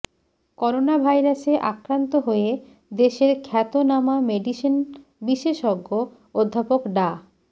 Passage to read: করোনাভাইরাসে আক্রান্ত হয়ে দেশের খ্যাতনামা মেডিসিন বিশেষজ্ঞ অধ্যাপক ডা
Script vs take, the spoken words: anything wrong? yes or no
no